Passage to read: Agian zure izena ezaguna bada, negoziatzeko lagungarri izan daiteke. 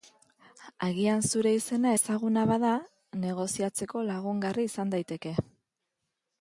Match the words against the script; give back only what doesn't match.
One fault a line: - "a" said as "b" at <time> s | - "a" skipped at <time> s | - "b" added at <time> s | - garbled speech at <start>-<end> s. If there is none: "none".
none